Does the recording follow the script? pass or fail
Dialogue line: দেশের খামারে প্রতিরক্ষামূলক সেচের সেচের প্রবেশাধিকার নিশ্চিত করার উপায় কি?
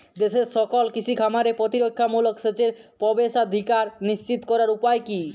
fail